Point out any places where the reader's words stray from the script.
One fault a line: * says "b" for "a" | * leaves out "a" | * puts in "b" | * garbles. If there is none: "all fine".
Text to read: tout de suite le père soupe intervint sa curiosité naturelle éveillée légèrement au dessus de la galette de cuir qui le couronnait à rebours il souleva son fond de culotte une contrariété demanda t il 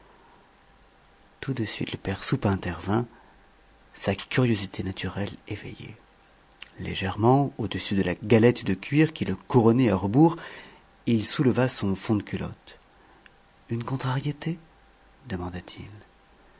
all fine